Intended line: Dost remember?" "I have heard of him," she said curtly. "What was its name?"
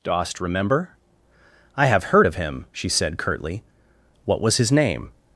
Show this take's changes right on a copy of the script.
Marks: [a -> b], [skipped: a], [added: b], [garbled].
Dost remember?" "I have heard of him," she said curtly. "What was [its -> his] name?"